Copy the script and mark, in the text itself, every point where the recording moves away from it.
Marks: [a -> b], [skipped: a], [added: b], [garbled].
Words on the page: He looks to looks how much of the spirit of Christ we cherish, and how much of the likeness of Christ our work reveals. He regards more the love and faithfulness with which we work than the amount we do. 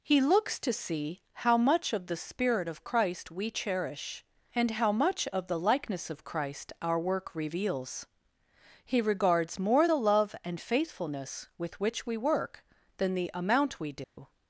He looks to [looks -> see] how much of the spirit of Christ we cherish, and how much of the likeness of Christ our work reveals. He regards more the love and faithfulness with which we work than the amount we do.